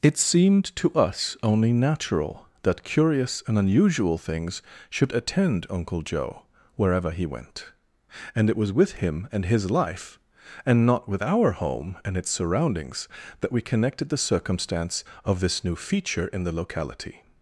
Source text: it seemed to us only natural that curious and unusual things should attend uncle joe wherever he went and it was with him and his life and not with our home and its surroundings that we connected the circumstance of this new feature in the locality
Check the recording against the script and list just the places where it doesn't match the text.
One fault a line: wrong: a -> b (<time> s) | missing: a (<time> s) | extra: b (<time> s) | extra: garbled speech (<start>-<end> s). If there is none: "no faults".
no faults